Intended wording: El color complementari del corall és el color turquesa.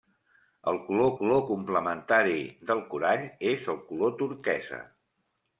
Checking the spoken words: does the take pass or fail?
fail